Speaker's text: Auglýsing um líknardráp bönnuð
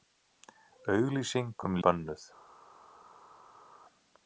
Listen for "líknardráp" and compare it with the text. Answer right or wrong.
wrong